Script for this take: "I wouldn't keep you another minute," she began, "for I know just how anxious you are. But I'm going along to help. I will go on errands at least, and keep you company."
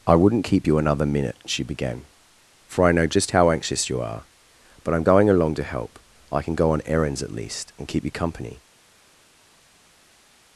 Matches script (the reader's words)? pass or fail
fail